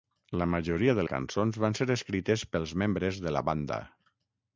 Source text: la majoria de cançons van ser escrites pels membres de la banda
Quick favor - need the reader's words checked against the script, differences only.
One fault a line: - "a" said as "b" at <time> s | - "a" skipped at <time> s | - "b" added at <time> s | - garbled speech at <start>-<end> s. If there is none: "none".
none